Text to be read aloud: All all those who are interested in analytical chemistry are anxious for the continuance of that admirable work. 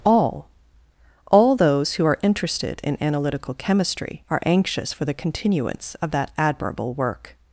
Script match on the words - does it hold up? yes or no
yes